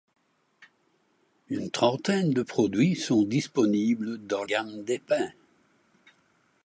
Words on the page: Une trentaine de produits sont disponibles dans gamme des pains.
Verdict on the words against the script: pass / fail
pass